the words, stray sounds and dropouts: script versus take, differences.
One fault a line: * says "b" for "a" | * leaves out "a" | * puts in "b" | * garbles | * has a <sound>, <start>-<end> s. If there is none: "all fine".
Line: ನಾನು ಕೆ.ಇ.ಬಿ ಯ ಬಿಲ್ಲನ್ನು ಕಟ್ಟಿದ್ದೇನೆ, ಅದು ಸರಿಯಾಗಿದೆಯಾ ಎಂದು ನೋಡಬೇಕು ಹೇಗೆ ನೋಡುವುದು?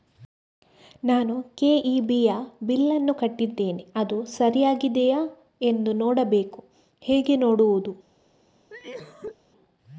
* has a cough, 8.7-9.4 s